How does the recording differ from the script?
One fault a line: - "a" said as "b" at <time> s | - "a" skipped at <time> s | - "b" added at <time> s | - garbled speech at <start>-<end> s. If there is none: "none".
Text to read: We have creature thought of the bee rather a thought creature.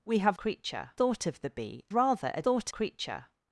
none